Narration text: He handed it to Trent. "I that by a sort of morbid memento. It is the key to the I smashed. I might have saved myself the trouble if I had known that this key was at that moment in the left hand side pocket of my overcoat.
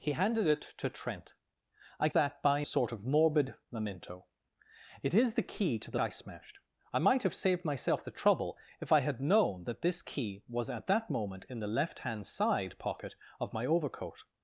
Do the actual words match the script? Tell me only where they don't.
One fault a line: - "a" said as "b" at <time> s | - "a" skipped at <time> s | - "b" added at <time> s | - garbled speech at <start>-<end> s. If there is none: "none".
none